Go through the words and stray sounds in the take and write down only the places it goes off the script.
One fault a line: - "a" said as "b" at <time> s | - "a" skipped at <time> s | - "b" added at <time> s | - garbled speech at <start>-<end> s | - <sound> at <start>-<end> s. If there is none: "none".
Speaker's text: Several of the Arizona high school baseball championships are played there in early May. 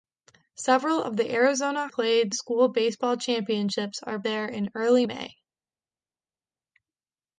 - "high" said as "played" at 1.9 s
- "played" skipped at 4.2 s